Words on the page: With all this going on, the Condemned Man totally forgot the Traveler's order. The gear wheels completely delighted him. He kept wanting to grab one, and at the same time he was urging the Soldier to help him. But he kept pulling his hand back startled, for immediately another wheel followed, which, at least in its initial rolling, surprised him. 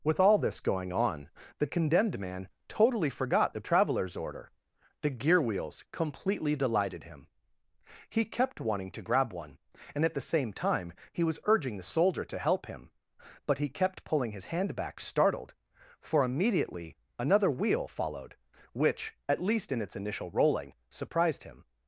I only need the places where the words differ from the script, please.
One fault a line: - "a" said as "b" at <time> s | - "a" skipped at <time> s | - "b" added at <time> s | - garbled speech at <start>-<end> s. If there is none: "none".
none